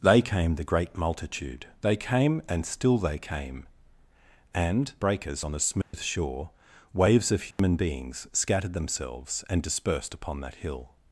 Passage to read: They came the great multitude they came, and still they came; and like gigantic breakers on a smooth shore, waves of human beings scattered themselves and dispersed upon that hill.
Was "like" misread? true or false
true